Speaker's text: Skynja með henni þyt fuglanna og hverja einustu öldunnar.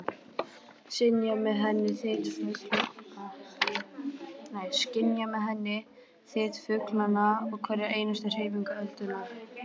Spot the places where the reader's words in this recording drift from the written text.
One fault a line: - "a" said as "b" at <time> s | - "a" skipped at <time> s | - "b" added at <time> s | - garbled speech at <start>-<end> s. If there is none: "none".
- "hreyfingu" added at 8.4 s